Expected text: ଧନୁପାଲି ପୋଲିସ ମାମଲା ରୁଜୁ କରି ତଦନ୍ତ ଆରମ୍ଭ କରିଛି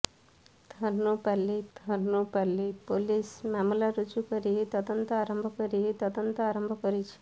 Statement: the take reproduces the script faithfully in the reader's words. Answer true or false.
false